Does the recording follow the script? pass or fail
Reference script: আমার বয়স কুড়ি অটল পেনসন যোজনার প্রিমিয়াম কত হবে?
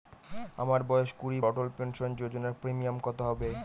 pass